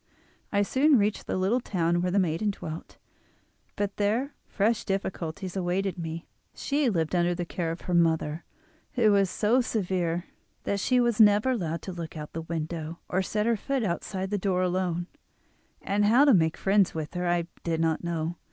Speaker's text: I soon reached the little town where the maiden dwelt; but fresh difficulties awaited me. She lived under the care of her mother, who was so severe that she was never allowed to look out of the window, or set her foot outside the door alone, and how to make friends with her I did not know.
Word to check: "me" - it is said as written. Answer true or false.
true